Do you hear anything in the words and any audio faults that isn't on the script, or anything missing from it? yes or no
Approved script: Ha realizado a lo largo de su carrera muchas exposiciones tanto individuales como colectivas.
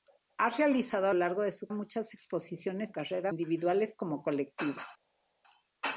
yes